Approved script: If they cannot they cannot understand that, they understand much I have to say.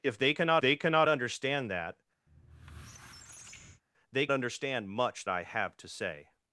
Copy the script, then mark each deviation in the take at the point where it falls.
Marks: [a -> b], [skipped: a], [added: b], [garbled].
If they cannot they cannot understand that, they understand much I have to say.